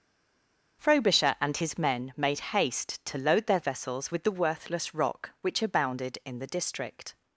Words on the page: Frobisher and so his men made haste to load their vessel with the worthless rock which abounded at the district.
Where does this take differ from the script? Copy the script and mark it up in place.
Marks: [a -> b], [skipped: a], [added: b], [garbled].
Frobisher and [skipped: so] his men made haste to load their [vessel -> vessels] with the worthless rock which abounded [at -> in] the district.